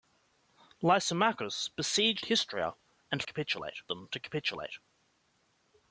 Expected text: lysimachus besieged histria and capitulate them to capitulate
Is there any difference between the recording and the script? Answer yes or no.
no